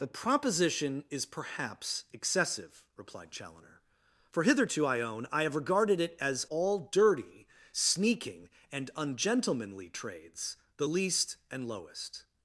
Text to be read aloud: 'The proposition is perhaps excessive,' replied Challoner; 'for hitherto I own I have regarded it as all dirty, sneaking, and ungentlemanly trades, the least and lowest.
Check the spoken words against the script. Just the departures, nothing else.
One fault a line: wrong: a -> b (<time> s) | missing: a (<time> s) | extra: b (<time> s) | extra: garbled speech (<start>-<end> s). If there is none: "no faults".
no faults